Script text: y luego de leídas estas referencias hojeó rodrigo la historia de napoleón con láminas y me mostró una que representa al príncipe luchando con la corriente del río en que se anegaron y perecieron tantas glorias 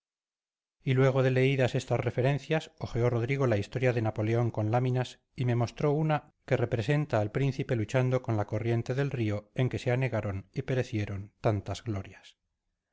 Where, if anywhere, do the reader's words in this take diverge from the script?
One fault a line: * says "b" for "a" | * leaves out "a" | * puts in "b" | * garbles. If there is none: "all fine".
all fine